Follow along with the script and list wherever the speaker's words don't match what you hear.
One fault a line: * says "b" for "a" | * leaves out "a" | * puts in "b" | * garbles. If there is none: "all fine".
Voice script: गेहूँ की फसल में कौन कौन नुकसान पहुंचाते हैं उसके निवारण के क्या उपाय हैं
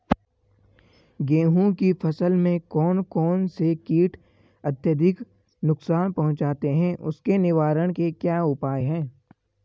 * puts in "से कीट अत्यधिक"